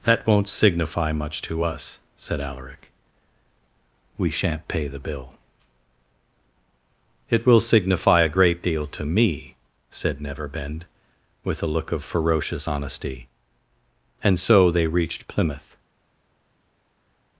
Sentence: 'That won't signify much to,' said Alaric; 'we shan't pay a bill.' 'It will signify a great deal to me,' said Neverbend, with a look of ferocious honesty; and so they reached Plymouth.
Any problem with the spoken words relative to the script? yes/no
yes